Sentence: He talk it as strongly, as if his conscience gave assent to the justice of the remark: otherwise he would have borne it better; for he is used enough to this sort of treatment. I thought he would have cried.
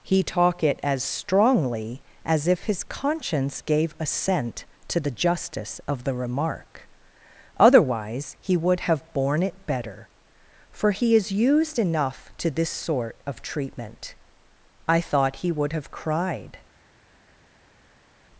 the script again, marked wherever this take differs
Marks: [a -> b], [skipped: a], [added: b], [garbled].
He talk it as strongly, as if his conscience gave assent to the justice of the remark: otherwise he would have borne it better; for he is used enough to this sort of treatment. I thought he would have cried.